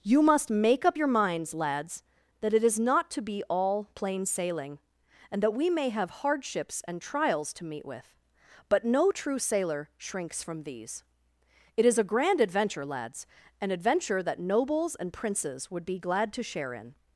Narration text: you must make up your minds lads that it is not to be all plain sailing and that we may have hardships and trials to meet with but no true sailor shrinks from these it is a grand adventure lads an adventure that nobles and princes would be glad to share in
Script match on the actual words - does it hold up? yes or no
yes